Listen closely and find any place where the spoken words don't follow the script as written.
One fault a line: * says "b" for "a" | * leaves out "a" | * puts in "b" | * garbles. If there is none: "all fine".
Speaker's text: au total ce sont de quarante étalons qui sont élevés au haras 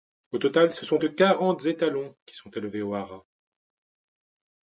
all fine